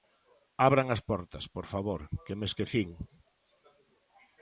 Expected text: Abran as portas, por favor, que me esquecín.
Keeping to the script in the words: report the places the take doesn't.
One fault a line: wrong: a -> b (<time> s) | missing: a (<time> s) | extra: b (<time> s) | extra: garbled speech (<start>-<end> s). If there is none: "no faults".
no faults